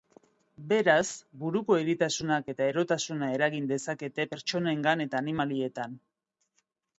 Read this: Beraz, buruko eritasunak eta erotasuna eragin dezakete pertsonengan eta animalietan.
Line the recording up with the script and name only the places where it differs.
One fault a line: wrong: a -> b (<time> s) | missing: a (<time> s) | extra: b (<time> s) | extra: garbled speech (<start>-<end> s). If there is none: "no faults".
no faults